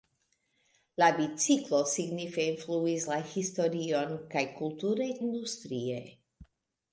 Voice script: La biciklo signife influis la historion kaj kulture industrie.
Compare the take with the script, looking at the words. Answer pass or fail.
pass